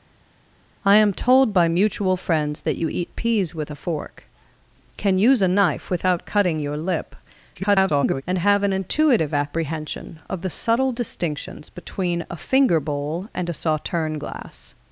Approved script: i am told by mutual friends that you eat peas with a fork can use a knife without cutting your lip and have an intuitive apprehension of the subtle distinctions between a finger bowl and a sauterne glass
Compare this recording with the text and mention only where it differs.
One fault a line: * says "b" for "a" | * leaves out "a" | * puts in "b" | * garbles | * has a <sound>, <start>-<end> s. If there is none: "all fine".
* garbles